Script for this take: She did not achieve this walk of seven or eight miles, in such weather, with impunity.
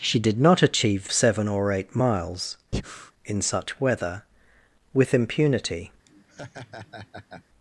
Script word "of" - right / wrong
wrong